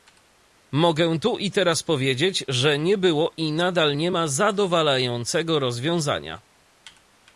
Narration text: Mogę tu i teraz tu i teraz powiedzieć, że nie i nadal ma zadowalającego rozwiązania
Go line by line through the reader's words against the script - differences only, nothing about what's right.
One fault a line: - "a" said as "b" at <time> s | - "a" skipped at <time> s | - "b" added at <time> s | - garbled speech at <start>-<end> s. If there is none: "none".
- "tu i teraz" skipped at 1.8 s
- "było" added at 3.0 s
- "nie" added at 3.9 s